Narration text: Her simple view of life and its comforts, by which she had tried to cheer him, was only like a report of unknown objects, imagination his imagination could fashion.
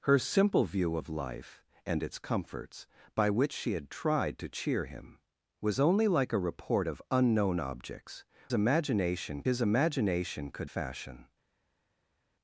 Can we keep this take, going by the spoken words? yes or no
yes